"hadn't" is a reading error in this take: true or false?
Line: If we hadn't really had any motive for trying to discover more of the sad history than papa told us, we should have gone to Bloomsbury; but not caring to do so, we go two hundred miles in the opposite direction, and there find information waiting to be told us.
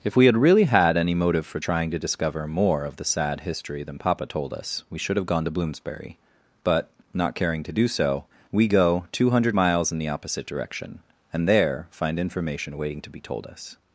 true